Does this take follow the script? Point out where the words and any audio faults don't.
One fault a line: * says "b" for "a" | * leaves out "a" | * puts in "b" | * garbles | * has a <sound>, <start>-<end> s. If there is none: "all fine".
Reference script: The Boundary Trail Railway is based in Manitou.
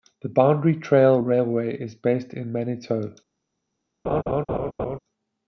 * has a laugh, 4.0-5.0 s